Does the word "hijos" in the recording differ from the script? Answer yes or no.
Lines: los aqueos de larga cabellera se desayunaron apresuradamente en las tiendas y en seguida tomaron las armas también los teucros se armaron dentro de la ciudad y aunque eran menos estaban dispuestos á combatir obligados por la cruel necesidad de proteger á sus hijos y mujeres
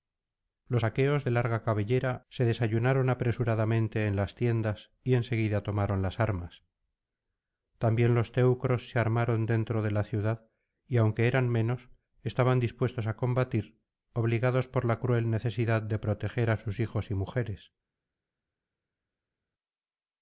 no